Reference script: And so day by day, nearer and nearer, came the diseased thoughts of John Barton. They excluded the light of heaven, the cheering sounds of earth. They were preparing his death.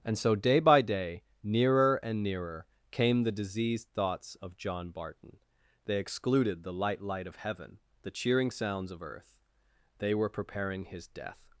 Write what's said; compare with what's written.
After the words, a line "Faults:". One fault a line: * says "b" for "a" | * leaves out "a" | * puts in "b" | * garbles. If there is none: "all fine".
And so day by day, nearer and nearer, came the diseased thoughts of John Barton. They excluded the light light of heaven, the cheering sounds of earth. They were preparing his death.
Faults:
* puts in "light"